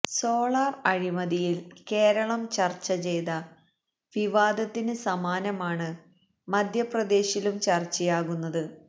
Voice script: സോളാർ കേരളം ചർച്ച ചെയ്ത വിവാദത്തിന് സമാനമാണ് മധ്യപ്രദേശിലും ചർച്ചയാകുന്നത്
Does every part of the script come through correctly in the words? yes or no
no